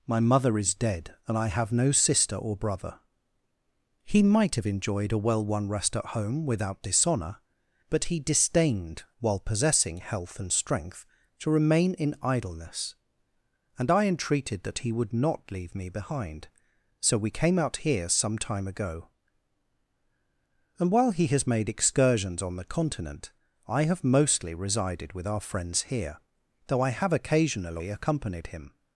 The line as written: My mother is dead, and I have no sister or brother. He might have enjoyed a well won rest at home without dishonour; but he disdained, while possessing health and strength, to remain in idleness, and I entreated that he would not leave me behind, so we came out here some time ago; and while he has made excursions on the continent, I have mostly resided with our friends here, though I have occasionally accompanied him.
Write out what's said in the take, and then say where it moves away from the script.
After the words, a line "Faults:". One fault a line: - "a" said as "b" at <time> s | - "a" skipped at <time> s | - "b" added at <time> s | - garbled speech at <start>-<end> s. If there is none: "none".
My mother is dead, and I have no sister or brother. He might have enjoyed a well won rest at home without dishonour; but he disdained, while possessing health and strength, to remain in idleness, and I entreated that he would not leave me behind, so we came out here some time ago; and while he has made excursions on the continent, I have mostly resided with our friends here, though I have occasionally accompanied him.
Faults:
none